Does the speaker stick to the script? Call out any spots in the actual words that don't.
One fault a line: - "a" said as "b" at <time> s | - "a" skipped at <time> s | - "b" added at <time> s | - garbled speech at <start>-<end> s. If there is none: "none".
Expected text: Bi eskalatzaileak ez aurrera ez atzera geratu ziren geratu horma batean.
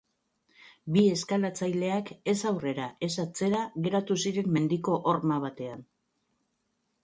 - "geratu" said as "mendiko" at 4.6 s